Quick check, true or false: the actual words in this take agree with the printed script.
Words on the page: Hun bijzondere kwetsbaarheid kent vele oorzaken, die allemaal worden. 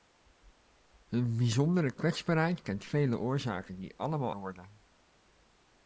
true